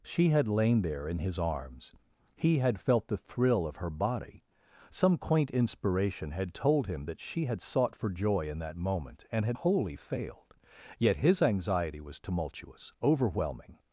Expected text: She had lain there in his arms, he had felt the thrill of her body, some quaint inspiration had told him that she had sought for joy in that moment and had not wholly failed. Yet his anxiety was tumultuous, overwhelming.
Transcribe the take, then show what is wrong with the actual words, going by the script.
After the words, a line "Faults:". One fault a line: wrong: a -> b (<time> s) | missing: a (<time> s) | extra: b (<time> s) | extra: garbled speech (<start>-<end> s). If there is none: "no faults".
She had lain there in his arms, he had felt the thrill of her body, some quaint inspiration had told him that she had sought for joy in that moment and had wholly failed. Yet his anxiety was tumultuous, overwhelming.
Faults:
missing: not (9.6 s)